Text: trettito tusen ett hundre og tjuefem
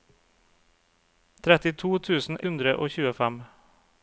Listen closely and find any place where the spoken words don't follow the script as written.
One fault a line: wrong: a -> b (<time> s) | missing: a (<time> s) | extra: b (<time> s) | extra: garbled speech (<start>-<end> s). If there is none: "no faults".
missing: ett (2.4 s)